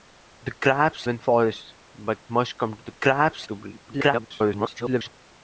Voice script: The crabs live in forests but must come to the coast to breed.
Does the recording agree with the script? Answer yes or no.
no